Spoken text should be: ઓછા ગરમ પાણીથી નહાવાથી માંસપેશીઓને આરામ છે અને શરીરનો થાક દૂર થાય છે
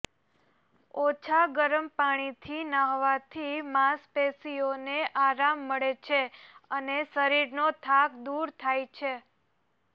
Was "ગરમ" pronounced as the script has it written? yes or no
yes